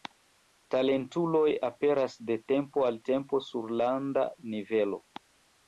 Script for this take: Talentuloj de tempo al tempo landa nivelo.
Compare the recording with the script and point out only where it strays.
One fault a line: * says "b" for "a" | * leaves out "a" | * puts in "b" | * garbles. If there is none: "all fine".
* puts in "aperas"
* puts in "sur"